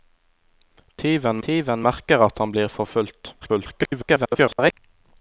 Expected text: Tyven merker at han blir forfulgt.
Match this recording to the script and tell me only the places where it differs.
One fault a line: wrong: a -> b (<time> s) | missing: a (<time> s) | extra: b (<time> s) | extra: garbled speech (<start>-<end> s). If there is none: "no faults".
extra: tyven (1.5 s)
extra: garbled speech (3.4-4.7 s)